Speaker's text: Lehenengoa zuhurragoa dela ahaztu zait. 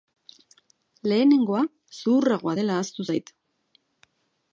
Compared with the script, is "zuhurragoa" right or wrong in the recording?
right